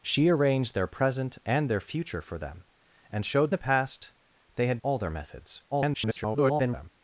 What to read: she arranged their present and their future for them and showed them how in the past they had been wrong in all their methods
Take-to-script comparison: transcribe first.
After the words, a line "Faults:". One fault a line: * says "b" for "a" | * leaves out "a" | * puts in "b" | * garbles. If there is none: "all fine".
she arranged their present and their future for them and showed the past they had all their methods [garbled]
Faults:
* leaves out "them how in"
* leaves out "been wrong in"
* garbles